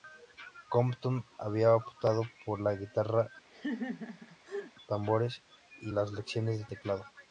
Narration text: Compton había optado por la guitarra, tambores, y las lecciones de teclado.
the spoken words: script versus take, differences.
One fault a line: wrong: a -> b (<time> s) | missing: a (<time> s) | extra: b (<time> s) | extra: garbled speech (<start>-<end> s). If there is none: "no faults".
no faults